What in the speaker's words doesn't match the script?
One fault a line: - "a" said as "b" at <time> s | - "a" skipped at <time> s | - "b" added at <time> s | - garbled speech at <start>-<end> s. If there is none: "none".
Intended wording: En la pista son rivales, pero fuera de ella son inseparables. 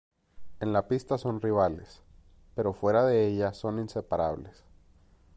none